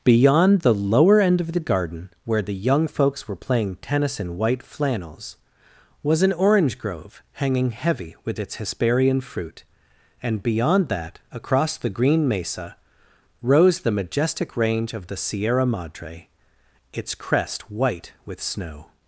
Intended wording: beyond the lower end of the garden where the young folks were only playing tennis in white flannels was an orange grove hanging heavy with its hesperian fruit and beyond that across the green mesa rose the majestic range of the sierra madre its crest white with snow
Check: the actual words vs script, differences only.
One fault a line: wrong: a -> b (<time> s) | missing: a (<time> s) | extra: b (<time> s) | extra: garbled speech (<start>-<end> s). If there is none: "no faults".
missing: only (3.4 s)